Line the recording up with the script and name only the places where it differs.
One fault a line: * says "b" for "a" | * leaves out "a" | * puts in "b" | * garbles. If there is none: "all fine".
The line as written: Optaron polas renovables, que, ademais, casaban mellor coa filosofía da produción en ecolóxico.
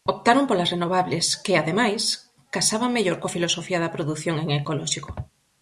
all fine